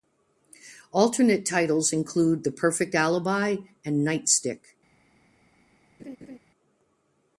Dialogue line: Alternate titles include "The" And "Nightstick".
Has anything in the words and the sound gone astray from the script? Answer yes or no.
yes